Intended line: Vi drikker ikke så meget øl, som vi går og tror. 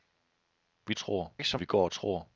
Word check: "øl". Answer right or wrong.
wrong